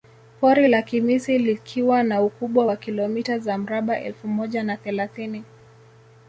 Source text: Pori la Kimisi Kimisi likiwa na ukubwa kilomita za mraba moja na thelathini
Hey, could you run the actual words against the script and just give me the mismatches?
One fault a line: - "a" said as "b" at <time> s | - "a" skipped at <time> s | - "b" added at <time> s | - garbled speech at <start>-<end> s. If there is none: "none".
- "Kimisi" skipped at 1.4 s
- "wa" added at 2.6 s
- "elfu" added at 4.0 s